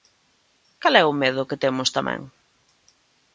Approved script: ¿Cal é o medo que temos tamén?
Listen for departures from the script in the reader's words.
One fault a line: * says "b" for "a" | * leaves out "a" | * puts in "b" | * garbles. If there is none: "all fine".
all fine